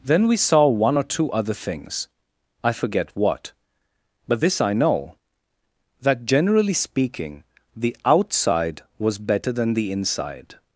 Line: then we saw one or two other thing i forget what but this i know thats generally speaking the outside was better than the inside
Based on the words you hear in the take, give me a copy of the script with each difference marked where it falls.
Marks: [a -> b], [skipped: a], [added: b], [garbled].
then we saw one or two other [thing -> things] i forget what but this i know [thats -> that] generally speaking the outside was better than the inside